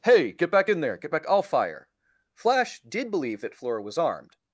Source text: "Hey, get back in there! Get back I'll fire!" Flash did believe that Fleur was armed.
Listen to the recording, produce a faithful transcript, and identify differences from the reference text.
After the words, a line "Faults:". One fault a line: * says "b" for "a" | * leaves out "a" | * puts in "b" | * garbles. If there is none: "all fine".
"Hey, get back in there! Get back I'll fire!" Flash did believe that Fleur was armed.
Faults:
all fine